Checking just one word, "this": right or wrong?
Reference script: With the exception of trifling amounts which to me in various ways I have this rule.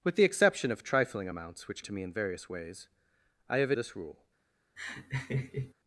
right